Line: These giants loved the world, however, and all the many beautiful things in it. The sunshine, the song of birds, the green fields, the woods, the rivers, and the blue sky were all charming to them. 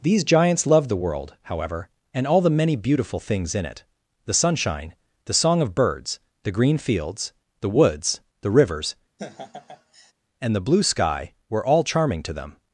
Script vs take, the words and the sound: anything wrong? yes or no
yes